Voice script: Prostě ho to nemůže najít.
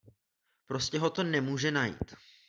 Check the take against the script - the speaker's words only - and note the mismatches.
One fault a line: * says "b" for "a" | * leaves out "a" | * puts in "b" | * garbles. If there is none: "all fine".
all fine